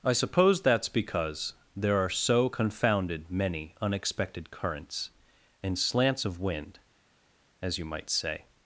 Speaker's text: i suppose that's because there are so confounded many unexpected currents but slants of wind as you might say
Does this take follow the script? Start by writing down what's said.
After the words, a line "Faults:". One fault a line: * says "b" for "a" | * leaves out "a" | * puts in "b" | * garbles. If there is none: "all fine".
i suppose that's because there are so confounded many unexpected currents and slants of wind as you might say
Faults:
* says "and" for "but"